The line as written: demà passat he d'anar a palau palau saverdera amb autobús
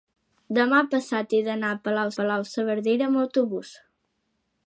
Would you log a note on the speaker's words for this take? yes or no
no